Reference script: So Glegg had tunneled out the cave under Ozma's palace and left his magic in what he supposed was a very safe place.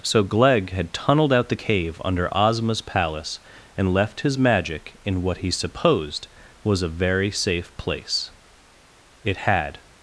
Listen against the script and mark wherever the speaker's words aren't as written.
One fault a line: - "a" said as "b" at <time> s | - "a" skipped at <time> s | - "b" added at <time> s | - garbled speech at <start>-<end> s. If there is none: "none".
- "It had" added at 9.2 s